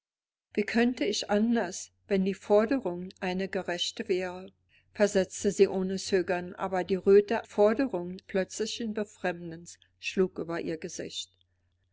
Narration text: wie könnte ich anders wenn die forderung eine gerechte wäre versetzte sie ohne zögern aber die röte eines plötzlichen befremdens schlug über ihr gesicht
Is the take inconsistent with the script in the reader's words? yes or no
yes